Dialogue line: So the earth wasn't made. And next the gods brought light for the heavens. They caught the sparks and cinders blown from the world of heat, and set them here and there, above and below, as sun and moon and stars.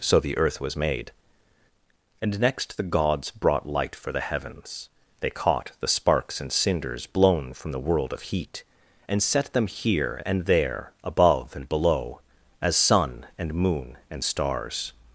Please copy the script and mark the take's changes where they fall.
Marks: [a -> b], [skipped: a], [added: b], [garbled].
So the earth [wasn't -> was] made. And next the gods brought light for the heavens. They caught the sparks and cinders blown from the world of heat, and set them here and there, above and below, as sun and moon and stars.